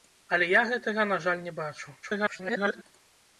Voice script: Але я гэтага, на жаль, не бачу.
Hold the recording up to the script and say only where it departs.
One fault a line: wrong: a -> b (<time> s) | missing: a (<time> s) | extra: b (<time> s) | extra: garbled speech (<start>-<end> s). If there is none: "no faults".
extra: garbled speech (2.0-2.8 s)